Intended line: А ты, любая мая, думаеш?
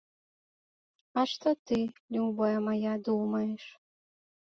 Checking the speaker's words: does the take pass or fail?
fail